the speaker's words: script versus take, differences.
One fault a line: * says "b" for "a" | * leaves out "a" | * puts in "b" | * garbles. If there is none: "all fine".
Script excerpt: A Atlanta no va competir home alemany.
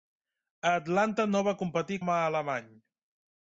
all fine